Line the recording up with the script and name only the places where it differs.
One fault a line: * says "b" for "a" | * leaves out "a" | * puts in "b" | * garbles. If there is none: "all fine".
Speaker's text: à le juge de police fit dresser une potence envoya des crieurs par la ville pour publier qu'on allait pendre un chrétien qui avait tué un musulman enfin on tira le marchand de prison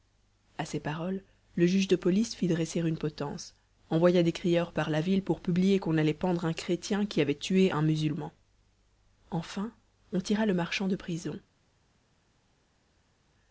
* puts in "ces paroles"